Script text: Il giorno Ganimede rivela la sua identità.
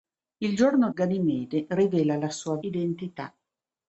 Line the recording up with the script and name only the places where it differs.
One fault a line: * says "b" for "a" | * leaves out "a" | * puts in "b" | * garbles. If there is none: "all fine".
all fine